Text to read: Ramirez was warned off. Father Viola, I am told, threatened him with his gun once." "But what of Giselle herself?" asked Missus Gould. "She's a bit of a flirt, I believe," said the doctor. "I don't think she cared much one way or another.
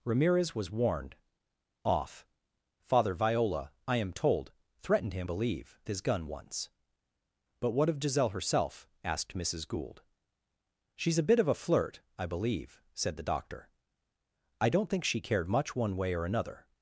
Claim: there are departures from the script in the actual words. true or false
true